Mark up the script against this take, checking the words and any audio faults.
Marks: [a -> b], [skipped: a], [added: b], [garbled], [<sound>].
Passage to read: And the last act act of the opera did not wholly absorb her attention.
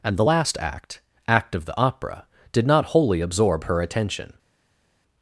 And the last act act of the opera did not wholly absorb her attention.